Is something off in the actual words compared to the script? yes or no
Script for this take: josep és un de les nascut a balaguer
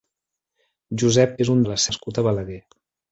no